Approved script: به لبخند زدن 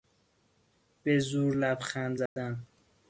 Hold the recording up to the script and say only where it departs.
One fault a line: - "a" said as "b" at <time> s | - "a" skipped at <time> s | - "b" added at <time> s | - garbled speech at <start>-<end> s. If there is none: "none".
- "زور" added at 1.2 s